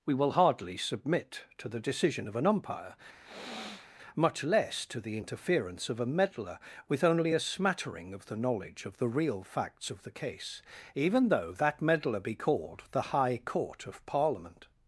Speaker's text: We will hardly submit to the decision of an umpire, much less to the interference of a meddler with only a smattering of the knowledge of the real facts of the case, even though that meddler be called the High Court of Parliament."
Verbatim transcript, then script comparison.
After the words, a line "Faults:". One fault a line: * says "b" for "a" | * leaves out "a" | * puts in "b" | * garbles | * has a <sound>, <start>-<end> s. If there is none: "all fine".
We will hardly submit to the decision of an umpire, much less to the interference of a meddler with only a smattering of the knowledge of the real facts of the case, even though that meddler be called the High Court of Parliament."
Faults:
* has a sniff, 3.2-3.9 s